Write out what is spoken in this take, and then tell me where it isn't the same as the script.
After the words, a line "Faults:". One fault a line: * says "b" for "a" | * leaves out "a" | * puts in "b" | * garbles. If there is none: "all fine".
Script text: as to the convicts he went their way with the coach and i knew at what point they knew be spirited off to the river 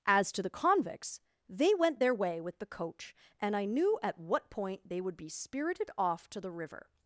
as to the convicts they went their way with the coach and i knew at what point they would be spirited off to the river
Faults:
* says "they" for "he"
* says "would" for "knew"